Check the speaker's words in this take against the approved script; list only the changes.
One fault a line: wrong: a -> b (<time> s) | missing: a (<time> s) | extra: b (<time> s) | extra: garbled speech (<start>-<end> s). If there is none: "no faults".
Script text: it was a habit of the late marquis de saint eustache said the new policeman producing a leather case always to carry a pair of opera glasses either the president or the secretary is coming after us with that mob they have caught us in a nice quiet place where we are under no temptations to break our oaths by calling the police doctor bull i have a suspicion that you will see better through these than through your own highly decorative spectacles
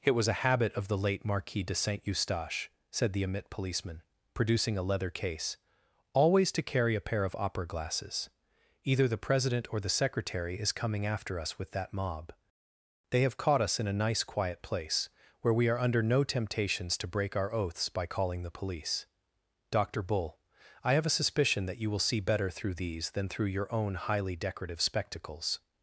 wrong: new -> emit (3.2 s)